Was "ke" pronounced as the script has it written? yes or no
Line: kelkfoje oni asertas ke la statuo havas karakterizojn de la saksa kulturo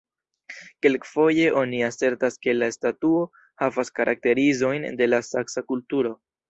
yes